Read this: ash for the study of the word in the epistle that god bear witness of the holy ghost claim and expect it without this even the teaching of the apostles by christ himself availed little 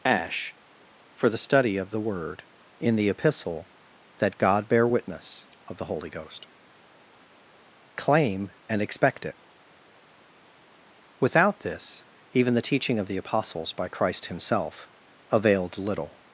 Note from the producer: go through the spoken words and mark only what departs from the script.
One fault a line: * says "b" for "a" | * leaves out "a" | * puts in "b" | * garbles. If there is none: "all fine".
all fine